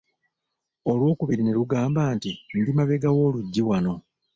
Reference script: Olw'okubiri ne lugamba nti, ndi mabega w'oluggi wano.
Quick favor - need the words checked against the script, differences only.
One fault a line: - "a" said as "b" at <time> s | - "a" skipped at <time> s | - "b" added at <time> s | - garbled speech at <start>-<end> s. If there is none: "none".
none